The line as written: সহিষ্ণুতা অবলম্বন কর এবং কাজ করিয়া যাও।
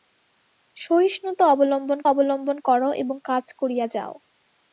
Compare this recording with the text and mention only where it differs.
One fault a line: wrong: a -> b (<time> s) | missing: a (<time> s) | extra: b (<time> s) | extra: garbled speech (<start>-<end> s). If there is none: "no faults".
extra: অবলম্বন (2.1 s)